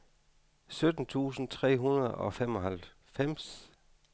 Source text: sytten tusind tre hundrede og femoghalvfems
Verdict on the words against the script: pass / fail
pass